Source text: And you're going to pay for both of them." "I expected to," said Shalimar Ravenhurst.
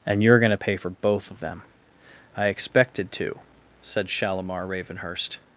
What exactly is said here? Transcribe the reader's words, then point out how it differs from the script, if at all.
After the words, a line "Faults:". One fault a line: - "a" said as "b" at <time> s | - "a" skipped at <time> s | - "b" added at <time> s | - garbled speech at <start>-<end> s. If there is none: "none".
And you're going to pay for both of them." "I expected to," said Shalimar Ravenhurst.
Faults:
none